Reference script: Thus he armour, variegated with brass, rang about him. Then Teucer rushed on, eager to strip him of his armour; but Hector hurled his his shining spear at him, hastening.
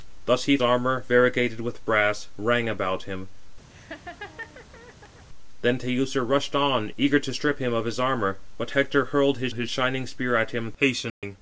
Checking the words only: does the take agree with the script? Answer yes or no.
yes